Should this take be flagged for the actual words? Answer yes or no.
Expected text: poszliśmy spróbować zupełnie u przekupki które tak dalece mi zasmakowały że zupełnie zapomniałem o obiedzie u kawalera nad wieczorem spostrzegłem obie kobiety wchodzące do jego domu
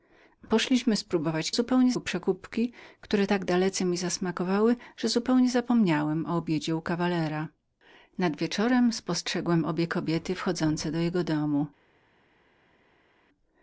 no